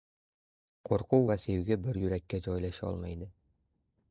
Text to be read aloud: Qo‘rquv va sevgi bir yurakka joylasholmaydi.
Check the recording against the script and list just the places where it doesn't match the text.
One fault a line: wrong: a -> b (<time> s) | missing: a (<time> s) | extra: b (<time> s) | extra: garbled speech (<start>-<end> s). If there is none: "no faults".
no faults